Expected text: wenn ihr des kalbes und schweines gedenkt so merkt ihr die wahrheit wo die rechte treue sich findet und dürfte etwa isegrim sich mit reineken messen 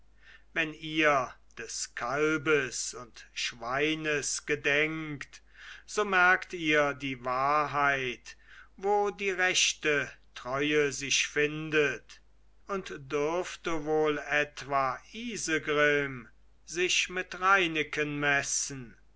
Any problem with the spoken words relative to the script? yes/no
yes